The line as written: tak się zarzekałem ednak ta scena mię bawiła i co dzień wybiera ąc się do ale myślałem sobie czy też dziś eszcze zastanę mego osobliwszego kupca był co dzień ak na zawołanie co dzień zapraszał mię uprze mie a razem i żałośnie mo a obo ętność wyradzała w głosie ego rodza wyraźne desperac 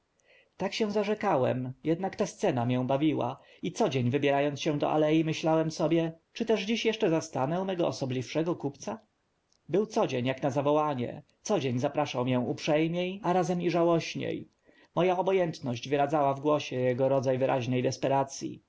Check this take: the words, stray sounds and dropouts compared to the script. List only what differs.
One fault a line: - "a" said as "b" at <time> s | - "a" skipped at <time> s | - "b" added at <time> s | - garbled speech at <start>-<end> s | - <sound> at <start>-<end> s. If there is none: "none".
none